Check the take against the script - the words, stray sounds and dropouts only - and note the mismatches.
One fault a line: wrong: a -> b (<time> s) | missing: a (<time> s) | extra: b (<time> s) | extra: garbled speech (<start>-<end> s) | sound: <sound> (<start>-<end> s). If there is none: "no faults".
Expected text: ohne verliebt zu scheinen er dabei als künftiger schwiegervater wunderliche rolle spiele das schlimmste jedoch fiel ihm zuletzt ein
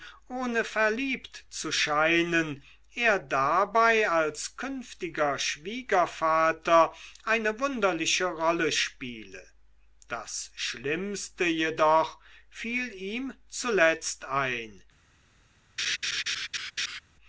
extra: eine (7.2 s)
sound: laugh (15.8-17.0 s)